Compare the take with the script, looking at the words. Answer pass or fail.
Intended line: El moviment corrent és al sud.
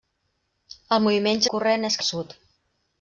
pass